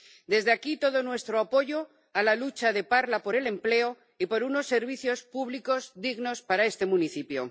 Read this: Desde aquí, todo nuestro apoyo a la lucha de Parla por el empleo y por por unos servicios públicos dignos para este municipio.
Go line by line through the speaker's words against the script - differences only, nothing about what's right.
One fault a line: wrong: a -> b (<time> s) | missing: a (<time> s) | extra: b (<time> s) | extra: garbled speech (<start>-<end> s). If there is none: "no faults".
missing: por (4.4 s)